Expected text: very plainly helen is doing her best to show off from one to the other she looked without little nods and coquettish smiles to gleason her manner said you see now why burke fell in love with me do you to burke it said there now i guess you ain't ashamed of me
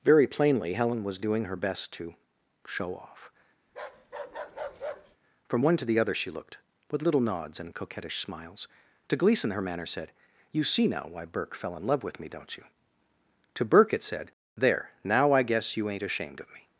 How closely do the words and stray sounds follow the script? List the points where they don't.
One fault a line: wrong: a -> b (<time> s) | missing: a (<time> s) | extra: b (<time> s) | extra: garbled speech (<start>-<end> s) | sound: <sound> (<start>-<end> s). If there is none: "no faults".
wrong: is -> was (1.0 s)
sound: bark (3.7-5.2 s)
wrong: without -> with (6.9 s)
wrong: do -> don't (12.3 s)